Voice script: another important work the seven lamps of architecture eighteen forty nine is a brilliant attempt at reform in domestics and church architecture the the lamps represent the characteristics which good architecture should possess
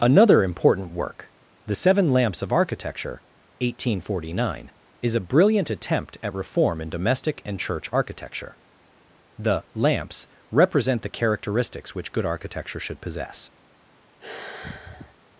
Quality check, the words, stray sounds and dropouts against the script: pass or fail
fail